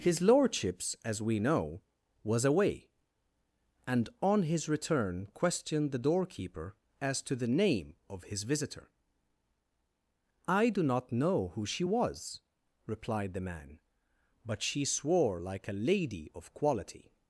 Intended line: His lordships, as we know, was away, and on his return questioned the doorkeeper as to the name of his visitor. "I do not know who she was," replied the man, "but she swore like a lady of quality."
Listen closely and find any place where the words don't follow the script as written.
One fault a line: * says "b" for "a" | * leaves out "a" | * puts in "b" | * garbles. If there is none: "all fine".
all fine